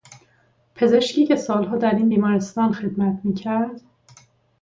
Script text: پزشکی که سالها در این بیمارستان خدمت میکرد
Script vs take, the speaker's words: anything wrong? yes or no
no